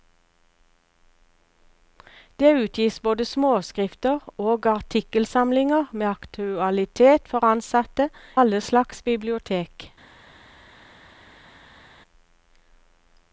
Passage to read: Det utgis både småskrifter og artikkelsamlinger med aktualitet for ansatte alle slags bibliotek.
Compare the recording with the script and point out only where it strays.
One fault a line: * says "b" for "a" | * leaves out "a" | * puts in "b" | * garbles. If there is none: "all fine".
all fine